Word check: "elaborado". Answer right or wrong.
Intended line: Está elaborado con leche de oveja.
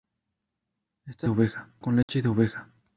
wrong